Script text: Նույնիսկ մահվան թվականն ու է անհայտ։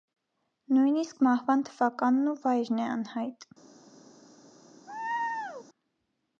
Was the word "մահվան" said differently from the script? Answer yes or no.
no